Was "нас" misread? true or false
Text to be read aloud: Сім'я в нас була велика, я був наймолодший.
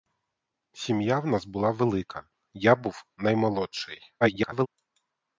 false